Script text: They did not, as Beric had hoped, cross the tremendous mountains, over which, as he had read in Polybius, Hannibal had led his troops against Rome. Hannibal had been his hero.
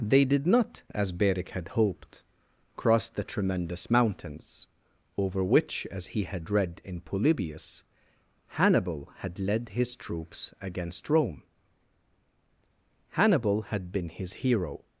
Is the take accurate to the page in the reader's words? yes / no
yes